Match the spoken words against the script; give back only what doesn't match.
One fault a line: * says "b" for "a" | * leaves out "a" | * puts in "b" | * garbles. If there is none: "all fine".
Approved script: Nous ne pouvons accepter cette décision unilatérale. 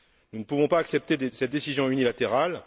* puts in "pas"